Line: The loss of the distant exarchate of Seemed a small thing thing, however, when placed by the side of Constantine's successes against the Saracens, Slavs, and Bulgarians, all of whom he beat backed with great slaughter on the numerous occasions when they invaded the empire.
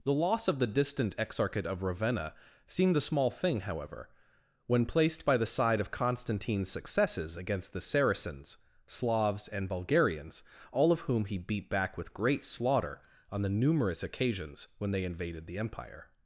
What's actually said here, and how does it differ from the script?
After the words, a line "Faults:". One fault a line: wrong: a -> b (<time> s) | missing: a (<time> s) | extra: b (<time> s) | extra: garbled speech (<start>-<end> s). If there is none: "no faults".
The loss of the distant exarchate of Ravenna seemed a small thing, however, when placed by the side of Constantine's successes against the Saracens, Slavs, and Bulgarians, all of whom he beat back with great slaughter on the numerous occasions when they invaded the empire.
Faults:
extra: Ravenna (1.8 s)
missing: thing (3.6 s)
wrong: backed -> back (11.7 s)